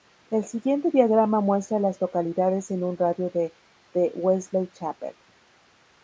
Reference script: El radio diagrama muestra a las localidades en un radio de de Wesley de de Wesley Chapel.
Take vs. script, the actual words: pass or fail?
fail